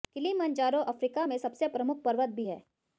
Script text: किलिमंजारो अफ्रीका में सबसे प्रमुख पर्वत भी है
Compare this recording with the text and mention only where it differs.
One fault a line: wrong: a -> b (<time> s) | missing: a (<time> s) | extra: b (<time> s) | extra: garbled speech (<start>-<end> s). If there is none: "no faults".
no faults